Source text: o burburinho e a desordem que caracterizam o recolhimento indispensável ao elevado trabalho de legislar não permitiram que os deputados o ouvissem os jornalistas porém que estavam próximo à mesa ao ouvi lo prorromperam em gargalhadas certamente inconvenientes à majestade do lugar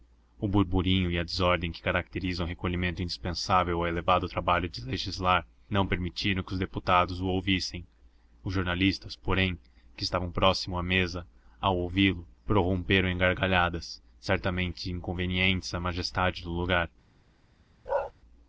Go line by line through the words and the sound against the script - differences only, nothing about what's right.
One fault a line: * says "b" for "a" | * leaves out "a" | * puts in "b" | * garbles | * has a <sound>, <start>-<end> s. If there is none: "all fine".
* has a bark, 17.9-18.1 s